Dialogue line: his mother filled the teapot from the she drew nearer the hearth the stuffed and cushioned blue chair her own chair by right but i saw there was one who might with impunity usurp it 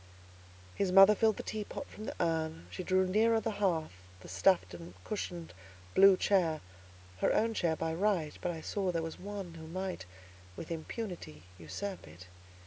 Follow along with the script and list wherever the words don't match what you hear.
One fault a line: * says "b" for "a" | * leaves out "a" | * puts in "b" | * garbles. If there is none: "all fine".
* puts in "urn"